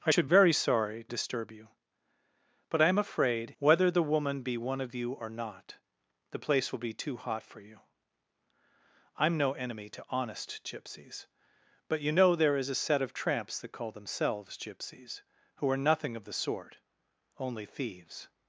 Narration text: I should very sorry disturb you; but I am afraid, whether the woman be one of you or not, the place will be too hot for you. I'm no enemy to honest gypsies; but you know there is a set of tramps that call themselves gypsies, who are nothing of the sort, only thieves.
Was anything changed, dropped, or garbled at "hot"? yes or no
no